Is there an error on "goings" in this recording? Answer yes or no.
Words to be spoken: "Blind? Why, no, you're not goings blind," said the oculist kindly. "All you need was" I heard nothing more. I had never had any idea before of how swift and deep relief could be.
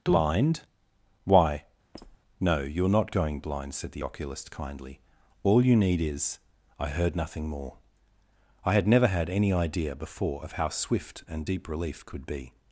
yes